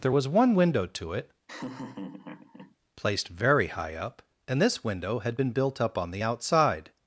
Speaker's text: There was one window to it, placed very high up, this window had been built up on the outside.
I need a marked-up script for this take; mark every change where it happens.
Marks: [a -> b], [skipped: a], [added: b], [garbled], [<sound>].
There was one window to it, [laugh] placed very high up, [added: and] this window had been built up on the outside.